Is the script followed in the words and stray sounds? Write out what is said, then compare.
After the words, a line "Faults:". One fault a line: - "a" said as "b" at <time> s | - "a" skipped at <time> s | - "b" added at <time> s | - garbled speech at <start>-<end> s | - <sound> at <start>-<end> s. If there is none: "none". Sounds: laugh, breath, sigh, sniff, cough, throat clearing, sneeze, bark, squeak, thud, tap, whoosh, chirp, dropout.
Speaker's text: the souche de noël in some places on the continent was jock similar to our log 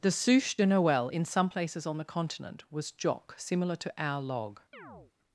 the souche de noël in some places on the continent was jock similar to our log
Faults:
- chirp at 4.7-5.1 s